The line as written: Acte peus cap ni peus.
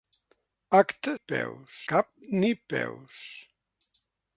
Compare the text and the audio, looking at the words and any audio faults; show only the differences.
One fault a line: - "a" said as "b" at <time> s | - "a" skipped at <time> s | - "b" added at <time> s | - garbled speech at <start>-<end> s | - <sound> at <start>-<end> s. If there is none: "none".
none